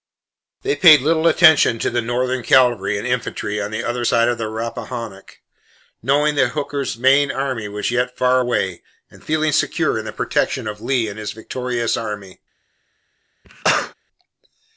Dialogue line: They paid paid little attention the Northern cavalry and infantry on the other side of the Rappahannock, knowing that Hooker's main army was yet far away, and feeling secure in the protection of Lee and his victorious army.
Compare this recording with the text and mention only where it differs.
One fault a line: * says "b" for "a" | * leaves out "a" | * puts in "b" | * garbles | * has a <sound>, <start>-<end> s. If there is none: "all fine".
* leaves out "paid"
* puts in "to"
* has a cough, 13.4-13.9 s